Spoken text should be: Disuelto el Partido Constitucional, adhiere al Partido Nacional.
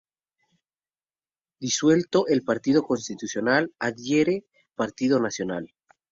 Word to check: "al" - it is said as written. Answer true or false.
false